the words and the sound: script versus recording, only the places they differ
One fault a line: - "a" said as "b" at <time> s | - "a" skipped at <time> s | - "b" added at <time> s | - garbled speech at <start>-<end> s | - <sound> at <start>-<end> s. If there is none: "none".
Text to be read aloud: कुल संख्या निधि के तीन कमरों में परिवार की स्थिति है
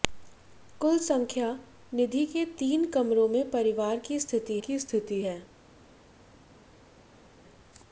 - "की स्थिति" added at 4.6 s